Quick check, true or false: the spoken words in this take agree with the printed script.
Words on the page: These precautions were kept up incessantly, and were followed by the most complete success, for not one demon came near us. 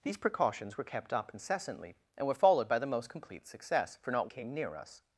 false